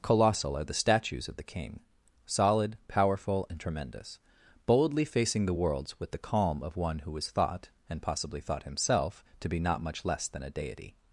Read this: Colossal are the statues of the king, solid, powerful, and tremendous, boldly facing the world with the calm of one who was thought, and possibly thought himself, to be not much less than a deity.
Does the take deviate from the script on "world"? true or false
true